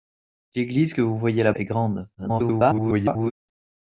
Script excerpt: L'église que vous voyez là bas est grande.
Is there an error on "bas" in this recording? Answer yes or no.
yes